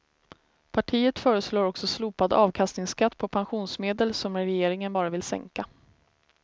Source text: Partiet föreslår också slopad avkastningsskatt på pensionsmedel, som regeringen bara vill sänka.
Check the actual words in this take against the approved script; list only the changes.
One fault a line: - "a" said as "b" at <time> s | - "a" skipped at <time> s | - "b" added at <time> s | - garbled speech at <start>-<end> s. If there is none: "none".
none